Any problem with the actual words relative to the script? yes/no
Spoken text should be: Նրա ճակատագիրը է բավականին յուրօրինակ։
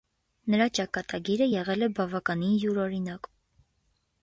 yes